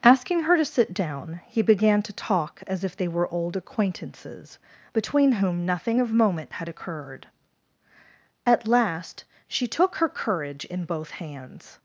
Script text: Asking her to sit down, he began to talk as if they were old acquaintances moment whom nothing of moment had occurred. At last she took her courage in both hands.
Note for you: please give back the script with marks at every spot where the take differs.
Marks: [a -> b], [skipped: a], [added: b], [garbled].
Asking her to sit down, he began to talk as if they were old acquaintances [moment -> between] whom nothing of moment had occurred. At last she took her courage in both hands.